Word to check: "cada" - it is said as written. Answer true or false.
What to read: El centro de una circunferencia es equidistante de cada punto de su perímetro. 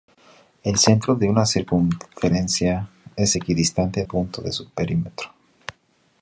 false